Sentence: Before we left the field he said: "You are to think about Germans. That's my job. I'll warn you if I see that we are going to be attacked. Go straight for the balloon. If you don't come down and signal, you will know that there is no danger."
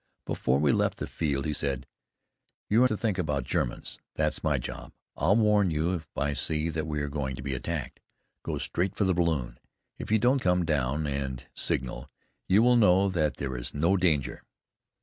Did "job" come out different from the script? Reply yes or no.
no